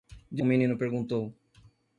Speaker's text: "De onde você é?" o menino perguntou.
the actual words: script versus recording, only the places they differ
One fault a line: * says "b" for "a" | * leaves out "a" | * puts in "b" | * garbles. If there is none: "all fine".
* leaves out "onde você é"